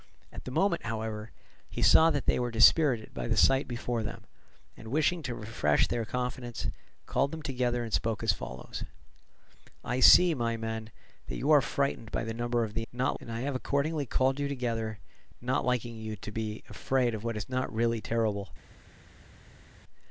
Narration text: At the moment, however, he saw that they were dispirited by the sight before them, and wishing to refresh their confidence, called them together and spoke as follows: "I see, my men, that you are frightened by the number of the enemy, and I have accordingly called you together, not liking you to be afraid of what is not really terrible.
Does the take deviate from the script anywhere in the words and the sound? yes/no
yes